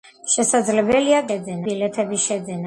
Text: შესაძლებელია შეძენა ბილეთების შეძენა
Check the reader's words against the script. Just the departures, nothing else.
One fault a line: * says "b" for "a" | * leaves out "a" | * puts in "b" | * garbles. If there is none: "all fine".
all fine